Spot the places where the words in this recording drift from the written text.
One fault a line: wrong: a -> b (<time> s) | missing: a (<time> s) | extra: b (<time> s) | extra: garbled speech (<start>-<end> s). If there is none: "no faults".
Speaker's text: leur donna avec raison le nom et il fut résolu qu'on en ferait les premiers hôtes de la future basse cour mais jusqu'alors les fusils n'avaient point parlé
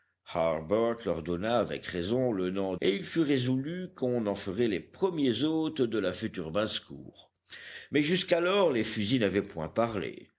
no faults